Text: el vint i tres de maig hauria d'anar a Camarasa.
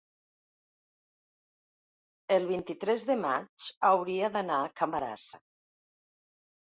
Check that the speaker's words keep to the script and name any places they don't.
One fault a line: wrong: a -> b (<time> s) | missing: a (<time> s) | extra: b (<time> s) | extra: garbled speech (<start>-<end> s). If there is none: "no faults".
no faults